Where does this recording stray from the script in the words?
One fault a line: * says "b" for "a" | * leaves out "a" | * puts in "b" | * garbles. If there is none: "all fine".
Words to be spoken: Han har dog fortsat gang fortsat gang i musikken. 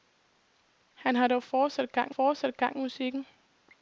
all fine